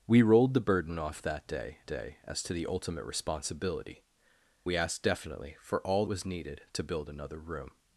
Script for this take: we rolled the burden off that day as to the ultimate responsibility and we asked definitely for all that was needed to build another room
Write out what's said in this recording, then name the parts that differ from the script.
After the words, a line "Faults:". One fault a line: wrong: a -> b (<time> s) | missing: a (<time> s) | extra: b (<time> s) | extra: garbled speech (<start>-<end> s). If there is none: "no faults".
we rolled the burden off that day day as to the ultimate responsibility we asked definitely for all was needed to build another room
Faults:
extra: day (1.9 s)
missing: and (4.0 s)
missing: that (6.0 s)